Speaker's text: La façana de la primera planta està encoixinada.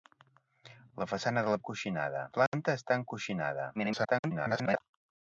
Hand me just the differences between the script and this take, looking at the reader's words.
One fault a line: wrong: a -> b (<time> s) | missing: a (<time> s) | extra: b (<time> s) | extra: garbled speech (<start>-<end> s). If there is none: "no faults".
wrong: primera -> encoixinada (1.6 s)
extra: garbled speech (3.7-4.8 s)